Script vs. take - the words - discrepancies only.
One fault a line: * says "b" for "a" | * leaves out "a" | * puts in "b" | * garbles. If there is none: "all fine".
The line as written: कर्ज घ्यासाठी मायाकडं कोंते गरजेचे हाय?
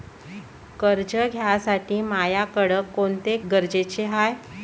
all fine